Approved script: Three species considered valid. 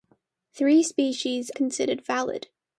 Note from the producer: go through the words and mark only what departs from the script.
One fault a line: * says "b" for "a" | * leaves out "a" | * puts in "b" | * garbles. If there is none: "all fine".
all fine